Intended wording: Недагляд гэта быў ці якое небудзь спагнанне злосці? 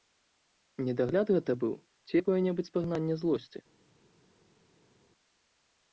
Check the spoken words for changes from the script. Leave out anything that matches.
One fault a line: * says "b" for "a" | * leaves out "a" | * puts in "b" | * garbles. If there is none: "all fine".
all fine